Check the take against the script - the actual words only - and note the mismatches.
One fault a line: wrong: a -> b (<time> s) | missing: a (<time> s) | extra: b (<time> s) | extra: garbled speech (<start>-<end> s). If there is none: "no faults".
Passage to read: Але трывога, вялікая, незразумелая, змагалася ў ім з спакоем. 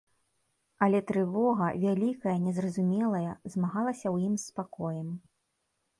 no faults